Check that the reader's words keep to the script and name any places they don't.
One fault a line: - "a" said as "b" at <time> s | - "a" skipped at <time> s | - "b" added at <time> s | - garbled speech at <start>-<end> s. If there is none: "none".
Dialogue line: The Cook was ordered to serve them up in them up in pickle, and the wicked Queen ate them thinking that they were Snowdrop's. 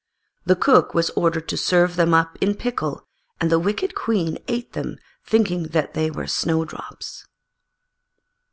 - "them up in" skipped at 2.5 s